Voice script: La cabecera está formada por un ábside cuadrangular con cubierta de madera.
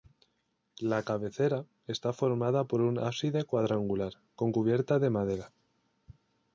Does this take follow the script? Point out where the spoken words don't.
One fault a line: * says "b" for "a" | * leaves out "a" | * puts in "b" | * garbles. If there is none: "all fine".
all fine